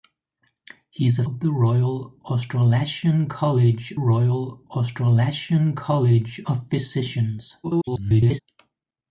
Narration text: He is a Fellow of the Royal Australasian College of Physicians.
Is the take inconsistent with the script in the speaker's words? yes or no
yes